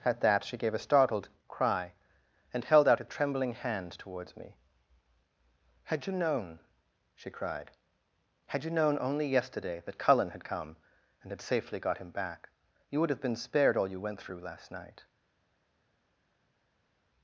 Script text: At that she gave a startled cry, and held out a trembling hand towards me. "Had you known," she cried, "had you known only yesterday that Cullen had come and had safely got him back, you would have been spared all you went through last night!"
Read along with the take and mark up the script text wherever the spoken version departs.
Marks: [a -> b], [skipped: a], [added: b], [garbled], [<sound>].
At that she gave a startled cry, and held out a trembling hand towards me. "Had you known," she cried, "had you known only yesterday that Cullen had come and had safely got him back, you would have been spared all you went through last night!"